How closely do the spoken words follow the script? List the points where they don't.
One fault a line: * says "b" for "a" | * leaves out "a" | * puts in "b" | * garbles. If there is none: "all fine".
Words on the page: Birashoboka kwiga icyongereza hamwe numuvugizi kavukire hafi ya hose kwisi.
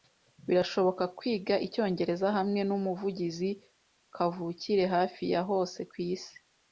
all fine